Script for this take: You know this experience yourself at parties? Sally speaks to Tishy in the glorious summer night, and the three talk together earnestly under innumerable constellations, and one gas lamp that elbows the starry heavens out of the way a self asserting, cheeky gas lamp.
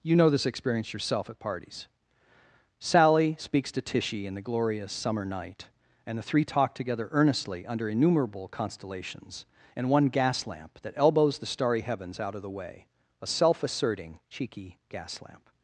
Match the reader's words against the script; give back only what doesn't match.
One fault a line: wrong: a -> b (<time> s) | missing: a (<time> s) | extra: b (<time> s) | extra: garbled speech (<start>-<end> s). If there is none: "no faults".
no faults